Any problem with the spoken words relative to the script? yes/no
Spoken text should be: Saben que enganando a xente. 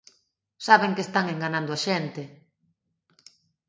yes